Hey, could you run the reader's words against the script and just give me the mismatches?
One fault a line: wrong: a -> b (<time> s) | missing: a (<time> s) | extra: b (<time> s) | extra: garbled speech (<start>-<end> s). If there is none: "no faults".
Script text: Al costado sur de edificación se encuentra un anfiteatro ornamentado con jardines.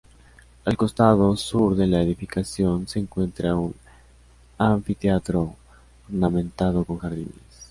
extra: la (1.9 s)